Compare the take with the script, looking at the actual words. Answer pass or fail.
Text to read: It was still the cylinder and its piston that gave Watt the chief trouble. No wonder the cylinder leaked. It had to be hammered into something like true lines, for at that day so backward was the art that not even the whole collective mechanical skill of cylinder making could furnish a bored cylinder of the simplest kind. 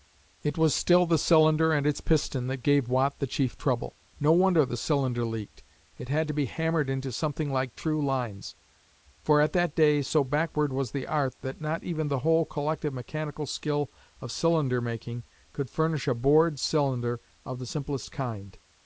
pass